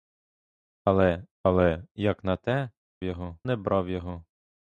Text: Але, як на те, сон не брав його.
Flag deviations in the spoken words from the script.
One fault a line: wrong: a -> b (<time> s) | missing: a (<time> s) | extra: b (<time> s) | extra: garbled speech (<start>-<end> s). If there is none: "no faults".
extra: але (1.4 s)
wrong: сон -> його (3.0 s)